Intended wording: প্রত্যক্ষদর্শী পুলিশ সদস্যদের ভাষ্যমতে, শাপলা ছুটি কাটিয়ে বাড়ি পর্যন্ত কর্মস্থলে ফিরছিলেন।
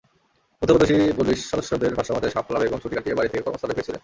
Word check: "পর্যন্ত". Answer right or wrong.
wrong